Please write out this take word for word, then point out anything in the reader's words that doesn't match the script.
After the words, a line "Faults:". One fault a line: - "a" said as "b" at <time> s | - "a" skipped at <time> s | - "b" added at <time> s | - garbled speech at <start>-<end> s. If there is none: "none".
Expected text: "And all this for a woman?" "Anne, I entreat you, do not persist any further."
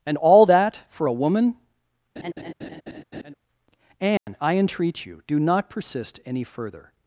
"And all that for a woman?" "Anne, I entreat you, do not persist any further."
Faults:
- "this" said as "that" at 0.4 s